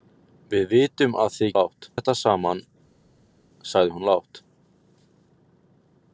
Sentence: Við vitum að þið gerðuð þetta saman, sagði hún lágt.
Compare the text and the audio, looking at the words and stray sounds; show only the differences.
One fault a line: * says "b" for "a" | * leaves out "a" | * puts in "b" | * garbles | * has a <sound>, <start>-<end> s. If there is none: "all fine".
* says "lágt" for "gerðuð"